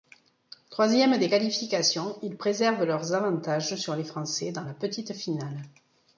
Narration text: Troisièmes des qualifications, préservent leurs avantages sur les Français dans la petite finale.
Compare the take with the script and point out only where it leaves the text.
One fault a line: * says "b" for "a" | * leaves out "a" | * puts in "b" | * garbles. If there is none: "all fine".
* puts in "ils"